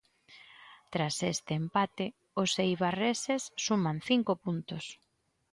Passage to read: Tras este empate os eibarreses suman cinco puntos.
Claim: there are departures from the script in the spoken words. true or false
false